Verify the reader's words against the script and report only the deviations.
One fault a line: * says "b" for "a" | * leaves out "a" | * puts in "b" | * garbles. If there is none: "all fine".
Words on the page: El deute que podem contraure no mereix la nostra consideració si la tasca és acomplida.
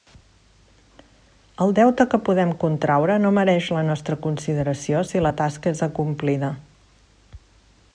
all fine